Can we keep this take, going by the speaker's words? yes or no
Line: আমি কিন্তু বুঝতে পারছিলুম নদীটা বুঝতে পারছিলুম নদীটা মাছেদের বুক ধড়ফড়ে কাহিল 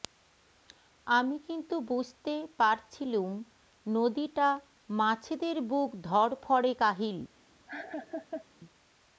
no